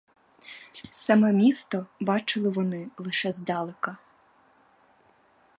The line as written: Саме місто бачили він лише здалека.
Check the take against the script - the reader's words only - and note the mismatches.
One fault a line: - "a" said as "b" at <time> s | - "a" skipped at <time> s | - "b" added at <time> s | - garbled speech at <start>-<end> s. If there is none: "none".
- "він" said as "вони" at 2.5 s